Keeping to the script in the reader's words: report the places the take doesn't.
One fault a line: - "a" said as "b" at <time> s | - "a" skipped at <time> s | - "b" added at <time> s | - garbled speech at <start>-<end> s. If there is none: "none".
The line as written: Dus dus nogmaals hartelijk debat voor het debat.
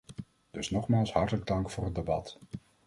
- "dus" skipped at 0.7 s
- "debat" said as "dank" at 1.5 s